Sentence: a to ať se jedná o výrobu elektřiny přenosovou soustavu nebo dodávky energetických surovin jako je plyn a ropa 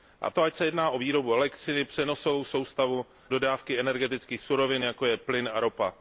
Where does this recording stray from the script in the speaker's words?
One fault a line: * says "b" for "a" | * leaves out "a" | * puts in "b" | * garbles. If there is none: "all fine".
* leaves out "nebo"